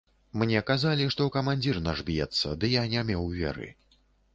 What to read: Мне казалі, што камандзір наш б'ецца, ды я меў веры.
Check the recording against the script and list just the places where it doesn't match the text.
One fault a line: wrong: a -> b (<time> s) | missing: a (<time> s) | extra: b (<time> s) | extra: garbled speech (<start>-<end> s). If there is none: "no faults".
extra: не (3.0 s)